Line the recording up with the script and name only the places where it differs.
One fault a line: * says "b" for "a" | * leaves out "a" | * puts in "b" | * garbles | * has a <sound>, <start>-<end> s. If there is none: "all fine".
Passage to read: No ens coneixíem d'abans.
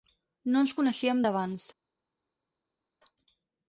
all fine